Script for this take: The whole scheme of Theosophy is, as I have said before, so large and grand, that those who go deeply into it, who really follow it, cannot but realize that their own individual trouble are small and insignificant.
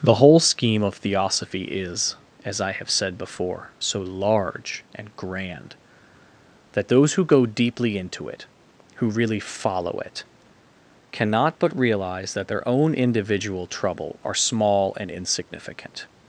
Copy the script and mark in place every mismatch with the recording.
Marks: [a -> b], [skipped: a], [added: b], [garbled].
The whole scheme of Theosophy is, as I have said before, so large and grand, that those who go deeply into it, who really follow it, cannot but realize that their own individual trouble are small and insignificant.